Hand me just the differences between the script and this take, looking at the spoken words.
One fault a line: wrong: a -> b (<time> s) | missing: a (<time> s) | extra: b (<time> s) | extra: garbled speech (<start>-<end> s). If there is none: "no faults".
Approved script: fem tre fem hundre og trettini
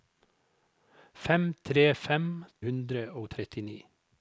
no faults